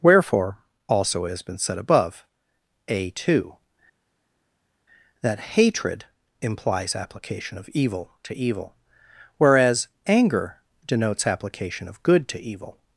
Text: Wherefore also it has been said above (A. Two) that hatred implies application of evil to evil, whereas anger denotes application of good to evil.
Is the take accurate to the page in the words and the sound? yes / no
yes